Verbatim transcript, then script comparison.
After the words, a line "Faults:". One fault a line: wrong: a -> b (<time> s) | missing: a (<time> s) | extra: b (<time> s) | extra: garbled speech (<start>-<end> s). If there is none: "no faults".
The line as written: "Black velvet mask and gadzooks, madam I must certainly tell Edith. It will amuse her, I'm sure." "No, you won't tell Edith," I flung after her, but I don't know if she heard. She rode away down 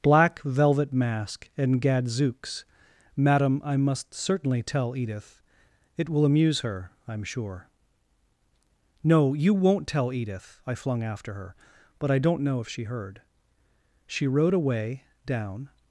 "Black velvet mask and gadzooks, madam I must certainly tell Edith. It will amuse her, I'm sure." "No, you won't tell Edith," I flung after her, but I don't know if she heard. She rode away down
Faults:
no faults